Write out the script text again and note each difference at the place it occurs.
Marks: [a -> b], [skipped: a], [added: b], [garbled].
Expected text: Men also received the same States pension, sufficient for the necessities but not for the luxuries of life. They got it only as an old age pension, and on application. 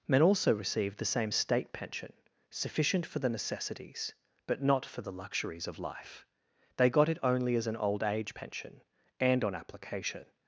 Men also received the same [States -> State] pension, sufficient for the necessities but not for the luxuries of life. They got it only as an old age pension, and on application.